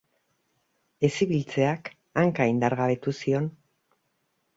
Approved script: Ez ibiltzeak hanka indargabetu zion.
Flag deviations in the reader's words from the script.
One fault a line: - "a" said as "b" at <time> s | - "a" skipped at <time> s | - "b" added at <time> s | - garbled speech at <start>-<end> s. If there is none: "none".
none